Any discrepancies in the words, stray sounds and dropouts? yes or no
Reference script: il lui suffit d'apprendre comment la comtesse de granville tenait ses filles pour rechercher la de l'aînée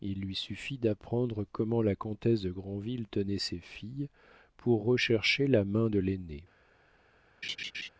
yes